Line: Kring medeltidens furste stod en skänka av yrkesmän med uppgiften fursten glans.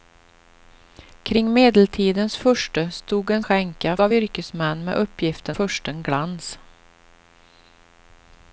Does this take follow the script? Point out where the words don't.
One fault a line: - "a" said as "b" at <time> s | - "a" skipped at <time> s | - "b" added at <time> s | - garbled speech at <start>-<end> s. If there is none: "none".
none